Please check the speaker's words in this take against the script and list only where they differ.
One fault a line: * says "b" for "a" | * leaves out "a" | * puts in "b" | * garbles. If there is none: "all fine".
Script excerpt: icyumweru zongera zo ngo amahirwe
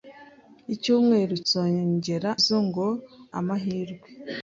all fine